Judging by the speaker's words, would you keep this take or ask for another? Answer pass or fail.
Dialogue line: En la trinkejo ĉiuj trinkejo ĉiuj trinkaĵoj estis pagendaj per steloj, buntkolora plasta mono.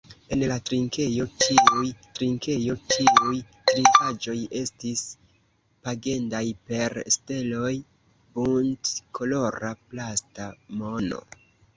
pass